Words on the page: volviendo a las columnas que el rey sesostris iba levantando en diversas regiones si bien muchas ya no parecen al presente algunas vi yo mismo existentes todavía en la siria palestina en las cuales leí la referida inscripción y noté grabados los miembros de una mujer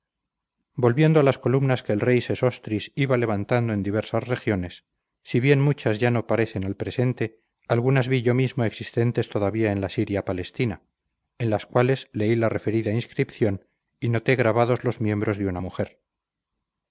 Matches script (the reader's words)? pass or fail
pass